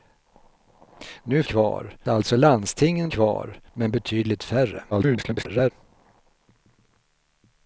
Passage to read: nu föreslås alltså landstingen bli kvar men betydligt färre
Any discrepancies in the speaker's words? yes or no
yes